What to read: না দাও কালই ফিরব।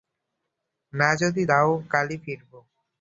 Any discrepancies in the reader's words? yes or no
yes